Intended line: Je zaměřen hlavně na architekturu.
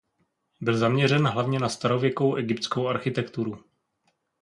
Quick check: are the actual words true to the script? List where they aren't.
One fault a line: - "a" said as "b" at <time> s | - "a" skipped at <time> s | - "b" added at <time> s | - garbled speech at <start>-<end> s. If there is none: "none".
- "Je" said as "Byl" at 0.6 s
- "starověkou egyptskou" added at 1.7 s